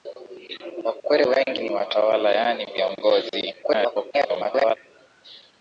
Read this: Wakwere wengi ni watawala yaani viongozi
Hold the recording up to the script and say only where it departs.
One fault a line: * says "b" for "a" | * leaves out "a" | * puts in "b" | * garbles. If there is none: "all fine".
* garbles